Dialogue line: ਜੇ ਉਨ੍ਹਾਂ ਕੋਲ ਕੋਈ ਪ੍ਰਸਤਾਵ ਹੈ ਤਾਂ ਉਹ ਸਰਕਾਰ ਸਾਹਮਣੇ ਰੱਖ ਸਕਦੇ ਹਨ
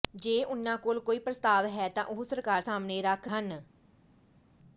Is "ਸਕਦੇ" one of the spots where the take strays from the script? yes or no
yes